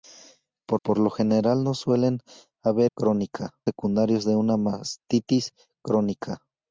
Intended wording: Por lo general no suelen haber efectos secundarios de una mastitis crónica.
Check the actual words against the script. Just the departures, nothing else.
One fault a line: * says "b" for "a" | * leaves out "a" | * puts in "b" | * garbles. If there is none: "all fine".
* puts in "por"
* says "crónica" for "efectos"